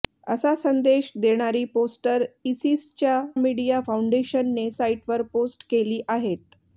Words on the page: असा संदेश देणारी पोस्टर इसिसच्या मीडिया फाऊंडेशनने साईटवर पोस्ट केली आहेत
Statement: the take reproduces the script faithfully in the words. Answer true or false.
true